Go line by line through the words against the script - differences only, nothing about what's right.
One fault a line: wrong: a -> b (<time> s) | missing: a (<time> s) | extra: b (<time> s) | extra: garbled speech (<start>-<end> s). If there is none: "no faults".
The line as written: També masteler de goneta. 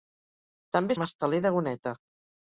no faults